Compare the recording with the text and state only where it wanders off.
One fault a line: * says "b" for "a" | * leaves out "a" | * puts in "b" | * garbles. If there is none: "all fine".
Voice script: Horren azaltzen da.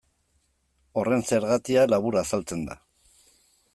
* puts in "zergatia labur"